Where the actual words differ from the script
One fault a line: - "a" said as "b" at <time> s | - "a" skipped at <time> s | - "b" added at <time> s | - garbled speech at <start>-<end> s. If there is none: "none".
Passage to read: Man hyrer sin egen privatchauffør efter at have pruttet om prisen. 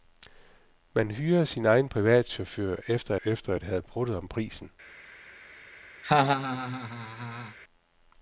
- "efter" added at 3.2 s